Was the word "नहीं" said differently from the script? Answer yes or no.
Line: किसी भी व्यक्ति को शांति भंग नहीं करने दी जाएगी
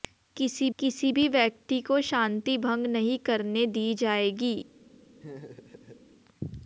no